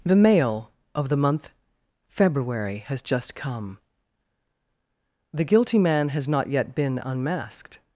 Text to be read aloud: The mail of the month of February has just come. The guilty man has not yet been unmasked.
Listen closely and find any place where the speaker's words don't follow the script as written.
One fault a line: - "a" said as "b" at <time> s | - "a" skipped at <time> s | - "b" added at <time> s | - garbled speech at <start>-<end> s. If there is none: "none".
- "of" skipped at 1.5 s